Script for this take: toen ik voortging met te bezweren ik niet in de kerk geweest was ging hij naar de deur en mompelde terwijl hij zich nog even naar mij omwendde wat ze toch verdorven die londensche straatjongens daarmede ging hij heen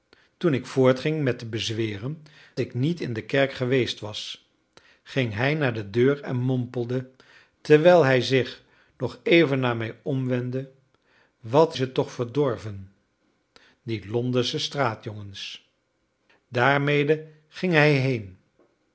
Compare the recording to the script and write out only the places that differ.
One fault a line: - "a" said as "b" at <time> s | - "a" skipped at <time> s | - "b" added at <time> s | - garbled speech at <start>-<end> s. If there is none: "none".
none